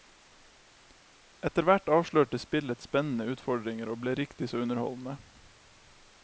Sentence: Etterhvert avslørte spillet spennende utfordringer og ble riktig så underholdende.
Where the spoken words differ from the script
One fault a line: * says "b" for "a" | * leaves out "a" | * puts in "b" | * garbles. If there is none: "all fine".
all fine